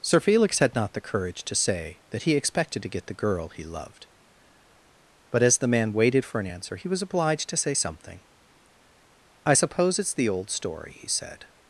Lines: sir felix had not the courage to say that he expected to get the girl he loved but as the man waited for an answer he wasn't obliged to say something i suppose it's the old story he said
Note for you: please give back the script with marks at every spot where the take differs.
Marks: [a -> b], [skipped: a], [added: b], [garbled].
sir felix had not the courage to say that he expected to get the girl he loved but as the man waited for an answer he [wasn't -> was] obliged to say something i suppose it's the old story he said